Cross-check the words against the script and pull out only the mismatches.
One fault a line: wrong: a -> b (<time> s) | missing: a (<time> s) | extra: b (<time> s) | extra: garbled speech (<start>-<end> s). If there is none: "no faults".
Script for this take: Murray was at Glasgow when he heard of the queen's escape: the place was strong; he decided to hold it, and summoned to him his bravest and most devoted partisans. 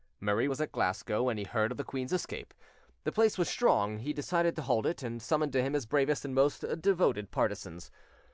no faults